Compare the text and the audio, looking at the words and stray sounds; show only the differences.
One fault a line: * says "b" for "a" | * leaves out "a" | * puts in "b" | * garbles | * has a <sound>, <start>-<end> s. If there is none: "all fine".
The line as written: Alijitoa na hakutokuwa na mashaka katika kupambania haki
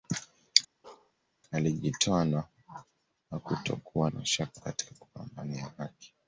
* has a bark, 0.8-1.1 s
* leaves out "na"